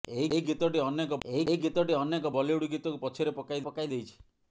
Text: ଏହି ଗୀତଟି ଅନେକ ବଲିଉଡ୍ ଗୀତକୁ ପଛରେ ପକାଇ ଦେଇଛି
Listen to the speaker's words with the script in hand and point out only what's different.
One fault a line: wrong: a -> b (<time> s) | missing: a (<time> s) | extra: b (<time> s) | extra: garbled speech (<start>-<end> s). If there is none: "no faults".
extra: ଏହି ଗୀତଟି ଅନେକ (1.3 s)
extra: ପକାଇ (3.6 s)